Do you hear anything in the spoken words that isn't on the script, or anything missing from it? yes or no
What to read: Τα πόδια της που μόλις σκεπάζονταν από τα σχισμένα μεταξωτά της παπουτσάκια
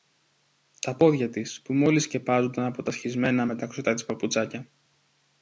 no